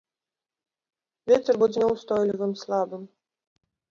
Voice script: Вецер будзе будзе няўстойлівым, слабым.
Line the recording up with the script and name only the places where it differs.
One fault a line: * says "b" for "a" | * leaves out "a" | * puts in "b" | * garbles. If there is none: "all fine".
* leaves out "будзе"